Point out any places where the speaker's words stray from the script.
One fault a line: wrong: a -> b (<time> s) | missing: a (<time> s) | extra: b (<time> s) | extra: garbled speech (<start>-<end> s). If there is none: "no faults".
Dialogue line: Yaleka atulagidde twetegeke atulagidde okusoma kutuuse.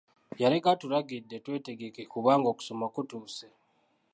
wrong: atulagidde -> kubanga (2.1 s)